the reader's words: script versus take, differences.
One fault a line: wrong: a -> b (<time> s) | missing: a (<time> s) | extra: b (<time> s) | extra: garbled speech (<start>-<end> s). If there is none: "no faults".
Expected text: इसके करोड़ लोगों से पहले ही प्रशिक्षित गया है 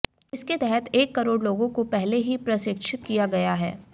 extra: तहत एक (0.5 s)
wrong: से -> को (1.7 s)
extra: किया (3.0 s)